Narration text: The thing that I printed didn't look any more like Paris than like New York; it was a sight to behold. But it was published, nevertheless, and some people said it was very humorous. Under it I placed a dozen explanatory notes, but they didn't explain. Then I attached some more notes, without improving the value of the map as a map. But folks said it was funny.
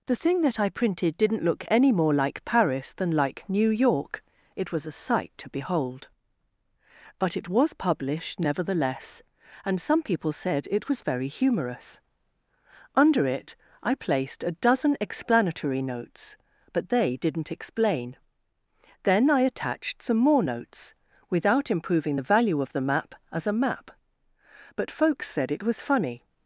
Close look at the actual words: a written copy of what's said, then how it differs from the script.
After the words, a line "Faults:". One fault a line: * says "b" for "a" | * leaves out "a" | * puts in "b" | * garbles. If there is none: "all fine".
The thing that I printed didn't look any more like Paris than like New York; it was a sight to behold. But it was published, nevertheless, and some people said it was very humorous. Under it I placed a dozen explanatory notes, but they didn't explain. Then I attached some more notes, without improving the value of the map as a map. But folks said it was funny.
Faults:
all fine